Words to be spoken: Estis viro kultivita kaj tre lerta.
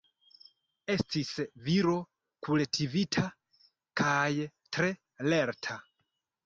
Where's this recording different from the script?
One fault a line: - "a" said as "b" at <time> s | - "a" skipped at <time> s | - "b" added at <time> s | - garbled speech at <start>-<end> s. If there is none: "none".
none